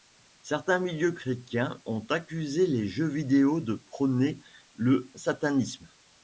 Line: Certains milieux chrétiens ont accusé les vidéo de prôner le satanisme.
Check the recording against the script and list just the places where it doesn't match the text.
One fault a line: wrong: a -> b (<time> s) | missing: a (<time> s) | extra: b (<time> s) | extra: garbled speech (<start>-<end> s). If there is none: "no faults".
extra: jeux (2.9 s)